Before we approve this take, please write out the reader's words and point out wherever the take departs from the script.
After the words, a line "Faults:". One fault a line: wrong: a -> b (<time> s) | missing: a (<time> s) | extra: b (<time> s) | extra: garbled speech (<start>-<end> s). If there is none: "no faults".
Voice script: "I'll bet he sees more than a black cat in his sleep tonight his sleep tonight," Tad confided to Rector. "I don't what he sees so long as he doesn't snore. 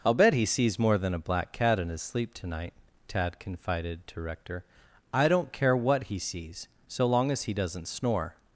"I'll bet he sees more than a black cat in his sleep tonight," Tad confided to Rector. "I don't care what he sees so long as he doesn't snore.
Faults:
missing: his sleep tonight (2.7 s)
extra: care (5.5 s)